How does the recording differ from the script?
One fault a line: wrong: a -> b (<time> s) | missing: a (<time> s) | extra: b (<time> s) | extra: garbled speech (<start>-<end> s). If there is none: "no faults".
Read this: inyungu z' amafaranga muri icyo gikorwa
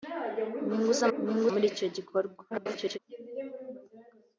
wrong: amafaranga -> inyungu (1.2 s)
extra: garbled speech (2.5-3.0 s)